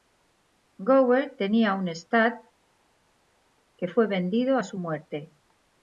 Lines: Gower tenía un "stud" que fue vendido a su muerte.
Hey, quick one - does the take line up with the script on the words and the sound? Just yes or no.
yes